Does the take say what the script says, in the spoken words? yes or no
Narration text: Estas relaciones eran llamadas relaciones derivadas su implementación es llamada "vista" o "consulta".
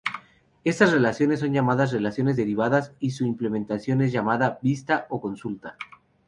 no